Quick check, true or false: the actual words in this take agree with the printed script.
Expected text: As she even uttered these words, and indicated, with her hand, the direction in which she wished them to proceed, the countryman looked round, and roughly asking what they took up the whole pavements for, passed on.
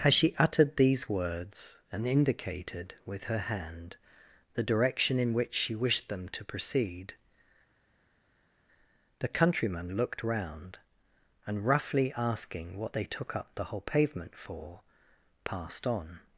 false